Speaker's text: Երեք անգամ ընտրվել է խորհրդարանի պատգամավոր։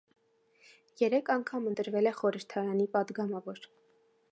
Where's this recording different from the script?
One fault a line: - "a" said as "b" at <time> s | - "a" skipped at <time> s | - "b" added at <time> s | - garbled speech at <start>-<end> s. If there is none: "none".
none